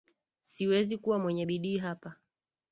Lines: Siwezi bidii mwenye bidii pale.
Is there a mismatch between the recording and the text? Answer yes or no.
yes